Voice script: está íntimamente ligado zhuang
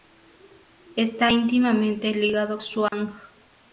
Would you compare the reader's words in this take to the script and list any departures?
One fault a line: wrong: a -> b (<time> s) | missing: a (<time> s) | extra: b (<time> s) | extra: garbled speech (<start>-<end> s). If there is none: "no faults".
no faults